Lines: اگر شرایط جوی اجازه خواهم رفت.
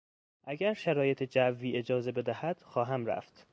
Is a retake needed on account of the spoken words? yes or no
yes